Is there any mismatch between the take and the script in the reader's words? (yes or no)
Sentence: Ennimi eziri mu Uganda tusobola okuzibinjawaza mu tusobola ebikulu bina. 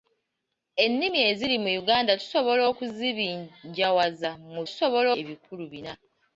no